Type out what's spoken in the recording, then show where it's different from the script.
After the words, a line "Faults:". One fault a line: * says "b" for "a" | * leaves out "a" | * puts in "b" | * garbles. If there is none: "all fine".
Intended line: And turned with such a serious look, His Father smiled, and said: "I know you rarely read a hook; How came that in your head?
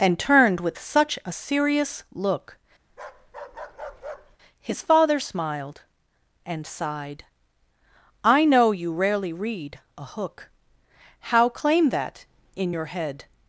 And turned with such a serious look, His Father smiled, and sighed: "I know you rarely read a hook; How claim that in your head?
Faults:
* says "sighed" for "said"
* says "claim" for "came"